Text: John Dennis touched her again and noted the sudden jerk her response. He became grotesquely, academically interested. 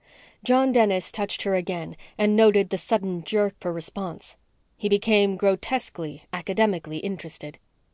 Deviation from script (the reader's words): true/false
false